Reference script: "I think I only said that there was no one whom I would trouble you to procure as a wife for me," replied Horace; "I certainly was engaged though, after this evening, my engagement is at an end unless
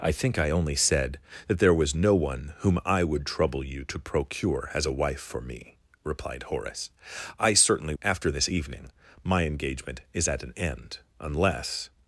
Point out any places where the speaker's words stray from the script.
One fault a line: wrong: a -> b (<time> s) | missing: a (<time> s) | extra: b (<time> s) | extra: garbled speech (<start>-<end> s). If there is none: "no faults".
missing: was engaged though (7.9 s)